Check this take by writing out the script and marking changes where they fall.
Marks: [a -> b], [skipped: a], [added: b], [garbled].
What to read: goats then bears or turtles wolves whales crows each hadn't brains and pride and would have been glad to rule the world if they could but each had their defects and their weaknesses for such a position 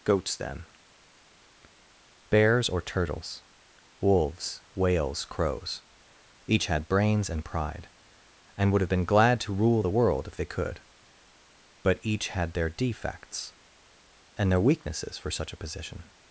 goats then bears or turtles wolves whales crows each [hadn't -> had] brains and pride and would have been glad to rule the world if they could but each had their defects and their weaknesses for such a position